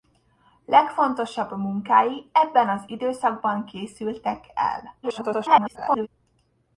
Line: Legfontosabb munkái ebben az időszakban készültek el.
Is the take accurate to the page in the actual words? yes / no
no